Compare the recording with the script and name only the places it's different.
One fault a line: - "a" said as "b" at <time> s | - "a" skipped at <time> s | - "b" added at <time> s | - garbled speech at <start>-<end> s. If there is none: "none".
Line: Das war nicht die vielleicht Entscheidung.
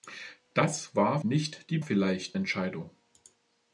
none